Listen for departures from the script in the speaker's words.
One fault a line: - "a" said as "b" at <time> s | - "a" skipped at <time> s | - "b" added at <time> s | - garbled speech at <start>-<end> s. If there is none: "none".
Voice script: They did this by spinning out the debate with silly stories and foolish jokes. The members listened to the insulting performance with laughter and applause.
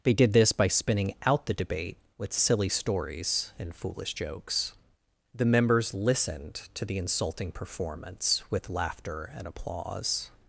none